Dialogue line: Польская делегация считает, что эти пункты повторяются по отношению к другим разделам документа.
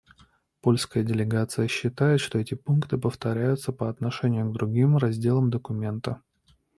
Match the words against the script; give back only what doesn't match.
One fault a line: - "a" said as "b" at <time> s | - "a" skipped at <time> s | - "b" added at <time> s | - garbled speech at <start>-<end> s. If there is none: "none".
none